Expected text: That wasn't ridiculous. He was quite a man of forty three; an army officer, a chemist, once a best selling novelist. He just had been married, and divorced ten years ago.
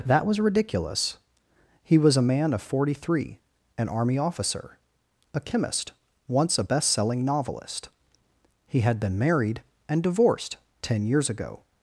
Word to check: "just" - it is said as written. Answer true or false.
false